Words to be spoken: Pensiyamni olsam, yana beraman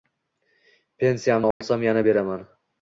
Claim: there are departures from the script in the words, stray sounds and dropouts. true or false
true